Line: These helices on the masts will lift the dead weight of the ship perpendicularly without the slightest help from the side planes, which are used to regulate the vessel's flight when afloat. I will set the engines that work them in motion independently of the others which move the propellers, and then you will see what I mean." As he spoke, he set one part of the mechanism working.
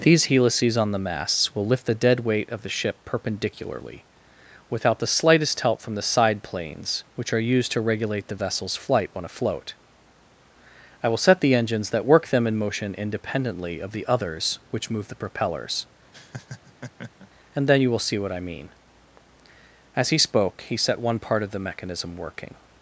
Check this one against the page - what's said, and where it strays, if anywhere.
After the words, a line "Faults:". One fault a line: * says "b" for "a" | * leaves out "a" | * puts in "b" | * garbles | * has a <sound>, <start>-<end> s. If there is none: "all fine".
These helices on the masts will lift the dead weight of the ship perpendicularly without the slightest help from the side planes, which are used to regulate the vessel's flight when afloat. I will set the engines that work them in motion independently of the others which move the propellers, and then you will see what I mean." As he spoke, he set one part of the mechanism working.
Faults:
* has a laugh, 16.1-17.3 s